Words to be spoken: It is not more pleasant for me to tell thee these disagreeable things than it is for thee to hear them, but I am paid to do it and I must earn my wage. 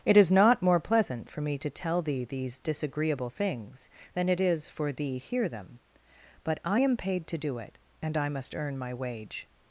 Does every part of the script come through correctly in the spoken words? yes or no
no